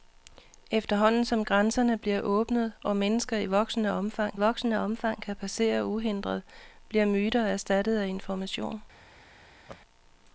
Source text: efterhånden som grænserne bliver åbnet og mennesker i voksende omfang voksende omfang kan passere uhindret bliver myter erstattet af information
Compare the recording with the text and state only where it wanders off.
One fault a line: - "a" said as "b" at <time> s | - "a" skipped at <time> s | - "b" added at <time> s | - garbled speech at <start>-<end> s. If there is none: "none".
none